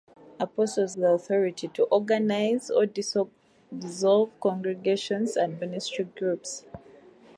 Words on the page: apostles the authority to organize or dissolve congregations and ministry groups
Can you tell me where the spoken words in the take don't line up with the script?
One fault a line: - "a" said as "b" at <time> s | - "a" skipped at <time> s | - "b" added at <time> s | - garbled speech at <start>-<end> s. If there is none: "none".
none